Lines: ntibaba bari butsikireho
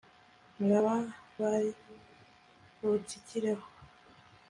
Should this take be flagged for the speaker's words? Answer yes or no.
no